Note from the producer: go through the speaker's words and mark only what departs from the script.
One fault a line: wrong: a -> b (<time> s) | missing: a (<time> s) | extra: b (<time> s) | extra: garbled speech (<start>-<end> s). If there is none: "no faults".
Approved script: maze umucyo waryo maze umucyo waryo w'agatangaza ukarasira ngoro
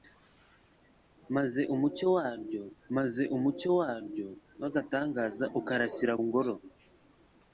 no faults